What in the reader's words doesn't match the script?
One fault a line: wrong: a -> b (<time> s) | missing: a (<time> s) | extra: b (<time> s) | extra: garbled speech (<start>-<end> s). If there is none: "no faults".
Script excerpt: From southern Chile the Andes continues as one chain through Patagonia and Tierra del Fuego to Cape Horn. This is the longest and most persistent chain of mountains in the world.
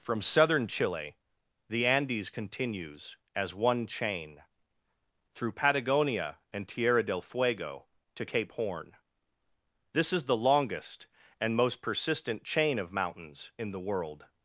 no faults